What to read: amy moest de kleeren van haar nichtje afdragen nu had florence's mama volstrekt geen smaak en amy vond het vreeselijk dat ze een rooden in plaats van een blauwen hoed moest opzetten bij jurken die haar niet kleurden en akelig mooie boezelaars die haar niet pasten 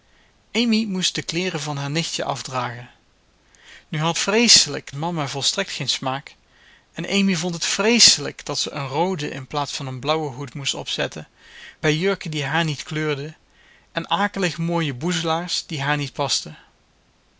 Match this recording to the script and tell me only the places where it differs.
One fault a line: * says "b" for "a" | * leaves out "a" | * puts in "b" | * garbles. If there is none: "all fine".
* says "vreeselijk" for "florence's"